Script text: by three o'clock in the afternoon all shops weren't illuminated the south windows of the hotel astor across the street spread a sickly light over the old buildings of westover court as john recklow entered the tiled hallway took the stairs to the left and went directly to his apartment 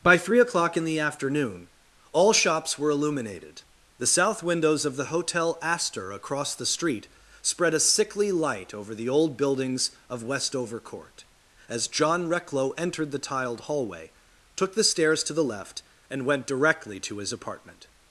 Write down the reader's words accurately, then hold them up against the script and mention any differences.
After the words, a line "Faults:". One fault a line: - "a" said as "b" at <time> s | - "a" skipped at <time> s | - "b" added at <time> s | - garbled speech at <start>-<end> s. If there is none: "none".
by three o'clock in the afternoon all shops were illuminated the south windows of the hotel astor across the street spread a sickly light over the old buildings of westover court as john recklow entered the tiled hallway took the stairs to the left and went directly to his apartment
Faults:
- "weren't" said as "were" at 2.8 s